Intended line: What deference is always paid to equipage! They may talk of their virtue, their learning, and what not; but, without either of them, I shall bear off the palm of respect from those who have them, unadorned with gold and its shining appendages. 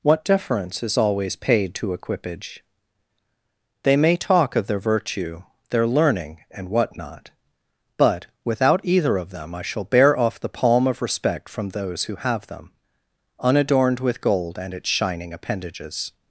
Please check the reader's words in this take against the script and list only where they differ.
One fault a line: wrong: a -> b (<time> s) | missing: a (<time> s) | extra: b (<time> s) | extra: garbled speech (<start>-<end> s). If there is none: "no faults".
no faults